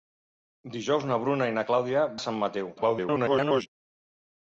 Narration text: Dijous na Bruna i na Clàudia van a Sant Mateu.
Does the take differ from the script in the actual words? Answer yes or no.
yes